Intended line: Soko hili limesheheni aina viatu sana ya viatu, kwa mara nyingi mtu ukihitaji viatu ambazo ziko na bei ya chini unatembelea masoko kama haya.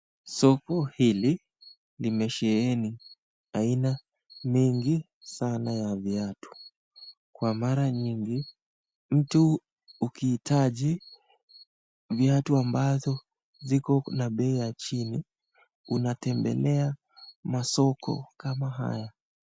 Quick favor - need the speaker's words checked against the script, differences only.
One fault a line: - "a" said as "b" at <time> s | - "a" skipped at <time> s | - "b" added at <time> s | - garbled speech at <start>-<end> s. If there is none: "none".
- "viatu" said as "mingi" at 4.4 s